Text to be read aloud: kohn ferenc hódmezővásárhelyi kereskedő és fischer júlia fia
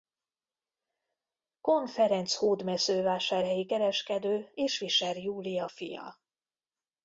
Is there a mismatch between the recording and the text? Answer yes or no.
no